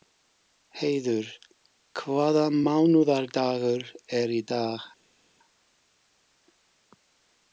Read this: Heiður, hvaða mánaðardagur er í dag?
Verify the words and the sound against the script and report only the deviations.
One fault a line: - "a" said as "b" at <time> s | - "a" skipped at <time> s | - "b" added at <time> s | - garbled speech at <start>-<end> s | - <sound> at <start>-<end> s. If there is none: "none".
none